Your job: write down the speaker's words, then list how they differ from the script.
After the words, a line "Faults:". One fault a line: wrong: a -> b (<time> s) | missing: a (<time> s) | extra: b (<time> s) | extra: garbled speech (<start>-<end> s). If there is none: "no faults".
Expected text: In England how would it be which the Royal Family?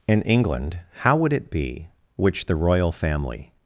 In England how would it be which the Royal Family?
Faults:
no faults